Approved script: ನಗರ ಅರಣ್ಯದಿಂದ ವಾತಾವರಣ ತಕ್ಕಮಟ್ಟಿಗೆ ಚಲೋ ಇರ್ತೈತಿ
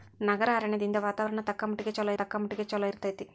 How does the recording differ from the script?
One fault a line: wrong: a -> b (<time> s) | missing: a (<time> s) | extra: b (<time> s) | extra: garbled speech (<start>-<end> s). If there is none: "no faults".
extra: ತಕ್ಕಮಟ್ಟಿಗೆ ಚಲೋ (2.1 s)